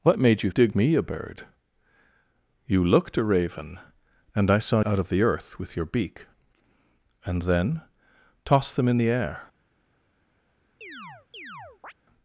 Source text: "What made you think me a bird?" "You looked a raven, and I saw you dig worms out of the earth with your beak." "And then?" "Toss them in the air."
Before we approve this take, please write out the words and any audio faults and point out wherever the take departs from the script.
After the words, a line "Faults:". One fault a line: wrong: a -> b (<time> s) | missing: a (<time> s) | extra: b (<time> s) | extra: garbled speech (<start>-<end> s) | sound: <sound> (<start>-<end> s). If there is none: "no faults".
"What made you dig me a bird?" "You looked a raven, and I saw out of the earth with your beak." "And then?" "Toss them in the air."
Faults:
wrong: think -> dig (0.5 s)
missing: you dig worms (4.8 s)
sound: chirp (10.8-11.9 s)